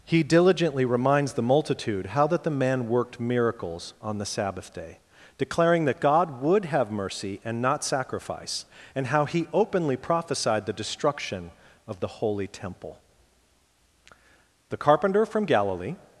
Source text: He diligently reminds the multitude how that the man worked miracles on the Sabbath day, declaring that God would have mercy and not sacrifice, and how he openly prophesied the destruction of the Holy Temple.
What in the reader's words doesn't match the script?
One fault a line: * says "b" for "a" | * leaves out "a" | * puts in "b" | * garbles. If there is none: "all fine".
* puts in "The carpenter from Galilee"